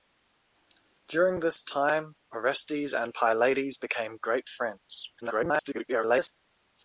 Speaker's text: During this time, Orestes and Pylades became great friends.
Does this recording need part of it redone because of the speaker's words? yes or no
yes